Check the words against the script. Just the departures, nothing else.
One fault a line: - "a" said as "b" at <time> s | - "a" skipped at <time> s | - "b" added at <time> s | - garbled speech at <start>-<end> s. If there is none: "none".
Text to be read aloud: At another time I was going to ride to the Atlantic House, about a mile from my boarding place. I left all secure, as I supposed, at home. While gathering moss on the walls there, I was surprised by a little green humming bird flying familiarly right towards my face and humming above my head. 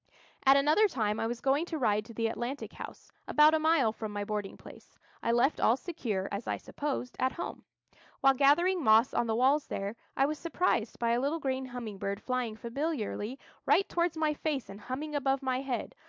none